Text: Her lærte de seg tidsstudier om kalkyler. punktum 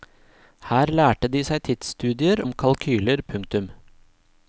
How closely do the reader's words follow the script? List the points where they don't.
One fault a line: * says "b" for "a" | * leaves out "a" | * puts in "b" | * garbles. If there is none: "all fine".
all fine